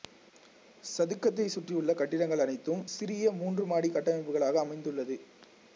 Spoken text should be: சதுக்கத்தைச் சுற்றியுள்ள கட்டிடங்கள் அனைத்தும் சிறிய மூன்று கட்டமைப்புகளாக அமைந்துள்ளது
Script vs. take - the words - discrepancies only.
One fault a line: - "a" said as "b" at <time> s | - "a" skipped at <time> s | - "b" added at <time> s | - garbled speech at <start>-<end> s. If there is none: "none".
- "மாடி" added at 3.7 s